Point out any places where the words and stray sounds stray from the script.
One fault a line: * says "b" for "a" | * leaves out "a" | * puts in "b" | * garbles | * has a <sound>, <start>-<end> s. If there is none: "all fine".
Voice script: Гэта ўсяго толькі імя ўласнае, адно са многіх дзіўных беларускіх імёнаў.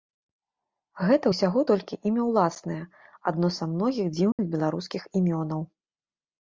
* has a dropout, 4.3-4.4 s